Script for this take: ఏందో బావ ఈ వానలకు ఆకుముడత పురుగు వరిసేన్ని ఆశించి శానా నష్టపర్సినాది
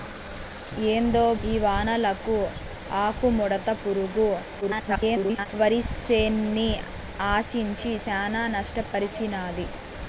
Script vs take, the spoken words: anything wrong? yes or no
yes